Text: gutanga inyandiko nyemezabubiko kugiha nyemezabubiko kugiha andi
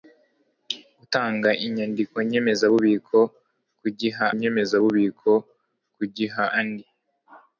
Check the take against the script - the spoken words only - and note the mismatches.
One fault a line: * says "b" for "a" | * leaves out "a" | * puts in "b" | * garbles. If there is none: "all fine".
all fine